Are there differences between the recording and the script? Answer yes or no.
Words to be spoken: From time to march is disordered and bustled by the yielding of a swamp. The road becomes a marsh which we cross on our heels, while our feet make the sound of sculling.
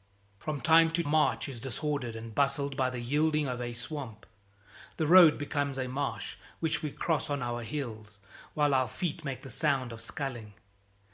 no